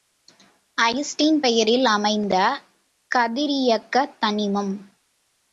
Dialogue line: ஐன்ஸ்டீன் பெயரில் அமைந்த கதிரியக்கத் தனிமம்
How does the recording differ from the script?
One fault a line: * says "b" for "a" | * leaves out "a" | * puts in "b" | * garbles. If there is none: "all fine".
all fine